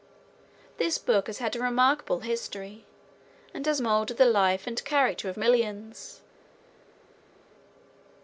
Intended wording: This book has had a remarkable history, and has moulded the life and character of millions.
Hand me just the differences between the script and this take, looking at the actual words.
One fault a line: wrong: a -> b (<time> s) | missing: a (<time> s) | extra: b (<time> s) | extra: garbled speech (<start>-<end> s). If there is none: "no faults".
no faults